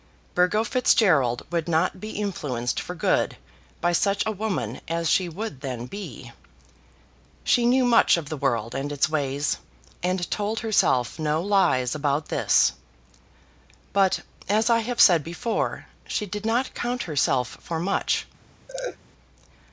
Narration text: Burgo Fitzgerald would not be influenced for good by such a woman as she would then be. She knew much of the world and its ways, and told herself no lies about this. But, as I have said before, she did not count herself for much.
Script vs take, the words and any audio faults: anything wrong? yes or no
yes